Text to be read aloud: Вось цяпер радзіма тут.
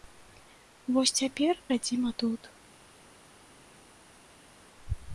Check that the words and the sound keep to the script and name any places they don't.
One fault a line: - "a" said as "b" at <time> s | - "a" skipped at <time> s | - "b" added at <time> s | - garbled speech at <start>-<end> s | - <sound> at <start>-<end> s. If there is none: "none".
none